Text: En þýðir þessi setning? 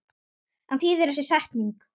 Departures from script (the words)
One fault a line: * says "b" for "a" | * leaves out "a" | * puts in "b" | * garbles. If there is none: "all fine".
all fine